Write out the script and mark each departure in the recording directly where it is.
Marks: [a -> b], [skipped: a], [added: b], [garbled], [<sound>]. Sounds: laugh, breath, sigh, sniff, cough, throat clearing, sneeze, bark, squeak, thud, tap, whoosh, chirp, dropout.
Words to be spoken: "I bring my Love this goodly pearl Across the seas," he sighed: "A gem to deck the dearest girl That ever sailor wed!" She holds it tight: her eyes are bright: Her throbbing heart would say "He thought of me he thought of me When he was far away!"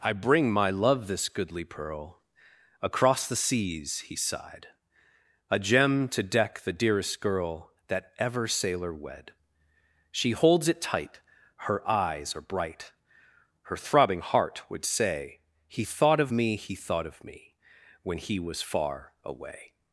"I bring my Love this goodly pearl Across the seas," he sighed: "A gem to deck the dearest girl That ever sailor wed!" She holds it tight: her eyes are bright: Her throbbing heart would say "He thought of me he thought of me When he was far away!"